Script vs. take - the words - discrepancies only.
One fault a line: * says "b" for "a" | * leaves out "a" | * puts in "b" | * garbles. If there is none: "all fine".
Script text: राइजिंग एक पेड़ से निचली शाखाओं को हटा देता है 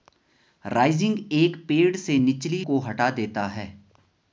* leaves out "शाखाओं"